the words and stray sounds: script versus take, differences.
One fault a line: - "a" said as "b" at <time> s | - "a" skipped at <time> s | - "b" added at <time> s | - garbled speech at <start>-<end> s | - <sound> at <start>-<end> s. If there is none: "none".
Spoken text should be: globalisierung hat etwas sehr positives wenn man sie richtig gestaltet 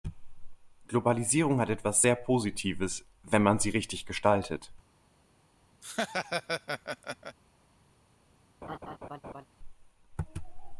- laugh at 5.8-7.4 s
- laugh at 8.6-9.5 s